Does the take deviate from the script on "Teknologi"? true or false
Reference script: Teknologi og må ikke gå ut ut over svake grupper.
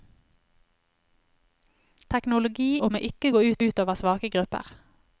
false